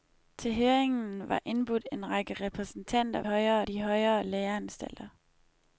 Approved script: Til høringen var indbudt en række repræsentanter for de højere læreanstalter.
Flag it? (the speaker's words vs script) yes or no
yes